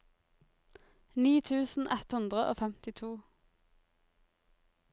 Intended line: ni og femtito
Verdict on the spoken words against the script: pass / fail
fail